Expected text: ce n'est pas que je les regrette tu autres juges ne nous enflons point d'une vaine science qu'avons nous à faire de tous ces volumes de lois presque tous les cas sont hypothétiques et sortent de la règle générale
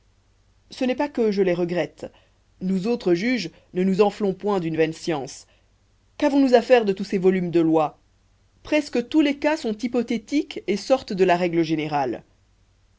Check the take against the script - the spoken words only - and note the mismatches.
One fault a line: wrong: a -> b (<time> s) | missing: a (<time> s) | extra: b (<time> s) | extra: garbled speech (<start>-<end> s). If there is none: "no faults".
wrong: tu -> nous (2.6 s)